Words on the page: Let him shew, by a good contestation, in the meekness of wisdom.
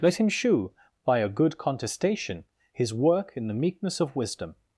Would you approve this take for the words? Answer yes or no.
no